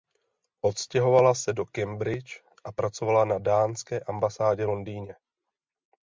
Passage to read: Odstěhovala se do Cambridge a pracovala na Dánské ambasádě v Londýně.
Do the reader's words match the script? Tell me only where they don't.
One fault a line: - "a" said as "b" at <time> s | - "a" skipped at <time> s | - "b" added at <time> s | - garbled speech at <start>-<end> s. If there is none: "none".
none